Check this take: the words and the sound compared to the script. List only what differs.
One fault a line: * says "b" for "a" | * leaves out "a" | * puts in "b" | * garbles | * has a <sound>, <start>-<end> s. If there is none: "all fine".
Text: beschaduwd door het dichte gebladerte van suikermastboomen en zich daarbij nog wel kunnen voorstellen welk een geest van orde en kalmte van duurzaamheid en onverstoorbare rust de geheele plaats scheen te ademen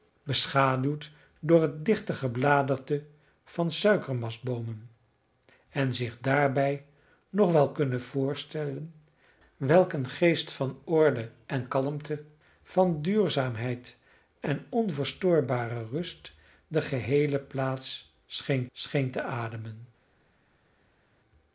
* puts in "scheen"